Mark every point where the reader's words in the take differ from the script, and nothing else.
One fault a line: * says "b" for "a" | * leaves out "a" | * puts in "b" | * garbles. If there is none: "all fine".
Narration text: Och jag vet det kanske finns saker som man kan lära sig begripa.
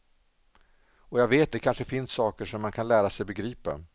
all fine